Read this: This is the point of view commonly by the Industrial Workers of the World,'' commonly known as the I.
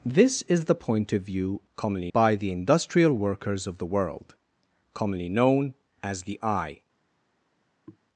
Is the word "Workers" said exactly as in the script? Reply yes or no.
yes